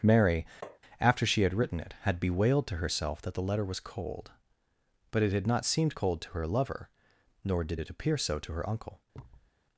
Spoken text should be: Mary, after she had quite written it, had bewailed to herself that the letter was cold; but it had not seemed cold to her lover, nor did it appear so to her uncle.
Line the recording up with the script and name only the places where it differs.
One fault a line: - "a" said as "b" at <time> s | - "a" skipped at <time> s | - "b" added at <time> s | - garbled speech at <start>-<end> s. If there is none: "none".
- "quite" skipped at 1.5 s